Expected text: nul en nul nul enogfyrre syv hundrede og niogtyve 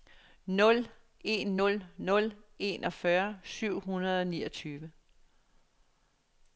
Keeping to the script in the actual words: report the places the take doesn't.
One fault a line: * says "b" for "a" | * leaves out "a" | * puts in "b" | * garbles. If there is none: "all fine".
all fine